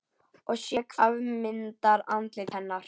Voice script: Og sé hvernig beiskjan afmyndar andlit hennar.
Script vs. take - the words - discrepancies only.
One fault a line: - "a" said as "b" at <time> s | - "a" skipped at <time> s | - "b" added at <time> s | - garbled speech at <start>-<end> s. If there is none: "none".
- "hvernig beiskjan" skipped at 0.8 s